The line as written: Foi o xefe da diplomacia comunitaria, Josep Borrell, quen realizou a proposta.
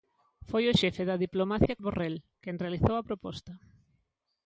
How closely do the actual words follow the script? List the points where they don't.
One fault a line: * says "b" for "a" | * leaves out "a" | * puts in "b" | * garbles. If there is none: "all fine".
* leaves out "comunitaria Josep"